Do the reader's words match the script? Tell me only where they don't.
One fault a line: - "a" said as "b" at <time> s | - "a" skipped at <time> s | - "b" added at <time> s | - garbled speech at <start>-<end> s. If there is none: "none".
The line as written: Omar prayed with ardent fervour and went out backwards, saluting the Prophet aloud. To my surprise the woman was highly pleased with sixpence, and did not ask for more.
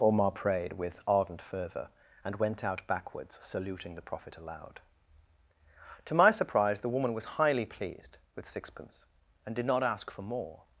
none